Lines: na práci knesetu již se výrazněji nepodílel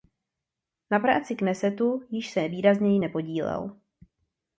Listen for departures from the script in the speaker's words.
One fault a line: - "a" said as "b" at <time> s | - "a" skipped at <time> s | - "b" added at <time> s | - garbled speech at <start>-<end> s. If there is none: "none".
none